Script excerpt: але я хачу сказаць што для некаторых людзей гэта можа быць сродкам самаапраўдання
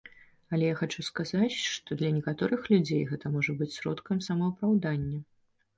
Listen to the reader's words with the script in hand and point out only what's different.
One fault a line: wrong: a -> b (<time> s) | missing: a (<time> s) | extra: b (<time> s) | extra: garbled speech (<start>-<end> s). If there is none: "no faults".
no faults